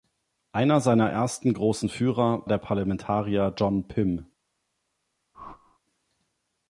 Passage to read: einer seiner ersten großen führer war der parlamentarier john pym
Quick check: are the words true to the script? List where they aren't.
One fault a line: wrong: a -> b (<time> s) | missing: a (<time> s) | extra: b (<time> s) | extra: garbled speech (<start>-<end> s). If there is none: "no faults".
missing: war (2.5 s)